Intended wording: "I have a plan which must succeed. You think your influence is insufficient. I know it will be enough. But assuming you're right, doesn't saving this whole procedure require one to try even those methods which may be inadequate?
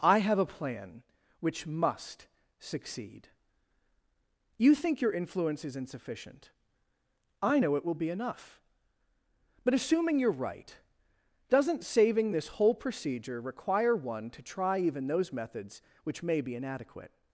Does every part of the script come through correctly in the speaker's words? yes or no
yes